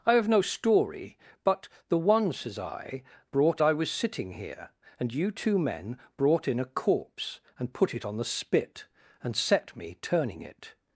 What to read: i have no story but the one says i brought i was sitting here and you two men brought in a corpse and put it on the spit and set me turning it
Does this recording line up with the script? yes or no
yes